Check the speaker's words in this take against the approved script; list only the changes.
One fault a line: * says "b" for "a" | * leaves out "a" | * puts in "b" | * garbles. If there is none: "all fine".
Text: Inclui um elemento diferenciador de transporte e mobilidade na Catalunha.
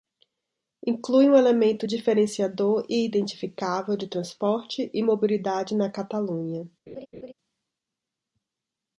* puts in "e identificável"